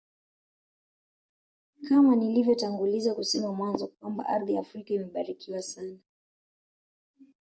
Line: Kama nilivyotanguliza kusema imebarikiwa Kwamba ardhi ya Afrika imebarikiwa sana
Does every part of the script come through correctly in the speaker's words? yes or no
no